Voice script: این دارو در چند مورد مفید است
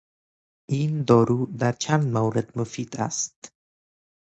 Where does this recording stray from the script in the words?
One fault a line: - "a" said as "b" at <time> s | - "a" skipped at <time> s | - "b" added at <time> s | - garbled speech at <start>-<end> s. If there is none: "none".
none